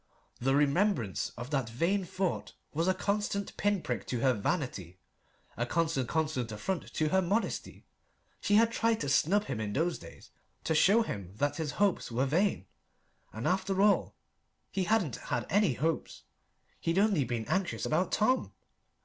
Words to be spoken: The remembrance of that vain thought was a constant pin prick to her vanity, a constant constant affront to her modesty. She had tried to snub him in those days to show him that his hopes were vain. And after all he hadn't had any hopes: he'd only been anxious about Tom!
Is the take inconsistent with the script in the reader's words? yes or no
no